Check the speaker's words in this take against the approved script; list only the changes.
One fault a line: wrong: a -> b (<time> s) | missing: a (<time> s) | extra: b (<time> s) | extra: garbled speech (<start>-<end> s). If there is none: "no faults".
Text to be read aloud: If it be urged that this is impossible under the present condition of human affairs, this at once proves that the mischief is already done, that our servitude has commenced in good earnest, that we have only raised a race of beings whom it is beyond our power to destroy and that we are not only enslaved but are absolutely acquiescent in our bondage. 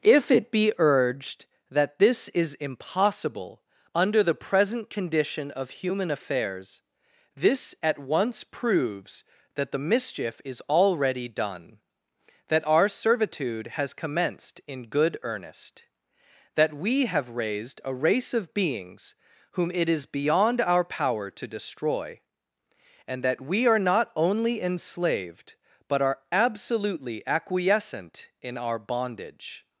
missing: only (17.3 s)